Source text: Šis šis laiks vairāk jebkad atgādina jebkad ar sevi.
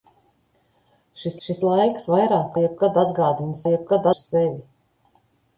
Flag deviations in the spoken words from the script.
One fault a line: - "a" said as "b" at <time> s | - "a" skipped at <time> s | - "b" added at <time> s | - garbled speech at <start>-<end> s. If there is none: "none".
none